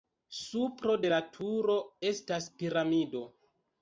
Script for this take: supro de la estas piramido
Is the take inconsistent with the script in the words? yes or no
yes